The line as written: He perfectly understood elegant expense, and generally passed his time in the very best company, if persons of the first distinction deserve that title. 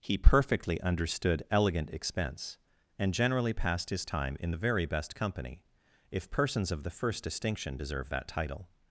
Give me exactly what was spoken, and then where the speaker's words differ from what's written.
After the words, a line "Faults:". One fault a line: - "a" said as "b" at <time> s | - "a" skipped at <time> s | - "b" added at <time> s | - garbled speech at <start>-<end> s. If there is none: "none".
He perfectly understood elegant expense, and generally passed his time in the very best company, if persons of the first distinction deserve that title.
Faults:
none